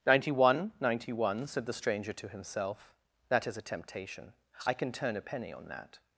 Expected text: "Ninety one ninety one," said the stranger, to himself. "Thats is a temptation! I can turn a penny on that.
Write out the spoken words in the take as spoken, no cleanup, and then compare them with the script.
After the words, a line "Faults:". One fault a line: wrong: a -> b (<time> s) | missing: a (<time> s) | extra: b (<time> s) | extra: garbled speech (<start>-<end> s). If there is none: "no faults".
"Ninety one ninety one," said the stranger, to himself. "That is a temptation! I can turn a penny on that.
Faults:
wrong: Thats -> That (3.3 s)